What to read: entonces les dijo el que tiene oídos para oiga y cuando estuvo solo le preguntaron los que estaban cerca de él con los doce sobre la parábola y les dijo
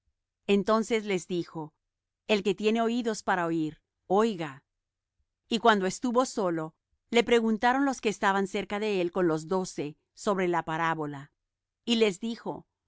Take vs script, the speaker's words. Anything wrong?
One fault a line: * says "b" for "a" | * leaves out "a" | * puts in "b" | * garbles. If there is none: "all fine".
* puts in "oir"